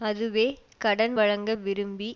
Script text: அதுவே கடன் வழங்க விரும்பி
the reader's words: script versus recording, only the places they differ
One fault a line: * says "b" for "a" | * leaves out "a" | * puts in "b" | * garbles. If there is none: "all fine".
all fine